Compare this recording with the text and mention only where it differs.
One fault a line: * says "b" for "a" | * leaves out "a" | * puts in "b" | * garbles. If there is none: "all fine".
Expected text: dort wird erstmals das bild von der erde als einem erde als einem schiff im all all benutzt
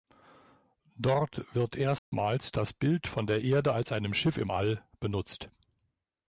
* leaves out "erde als einem"
* leaves out "all"